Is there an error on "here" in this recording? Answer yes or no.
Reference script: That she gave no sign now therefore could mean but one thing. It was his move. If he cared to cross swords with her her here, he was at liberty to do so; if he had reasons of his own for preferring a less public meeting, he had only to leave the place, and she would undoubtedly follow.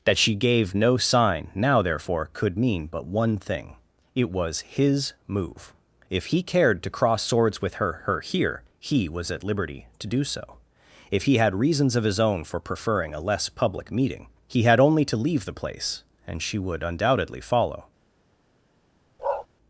no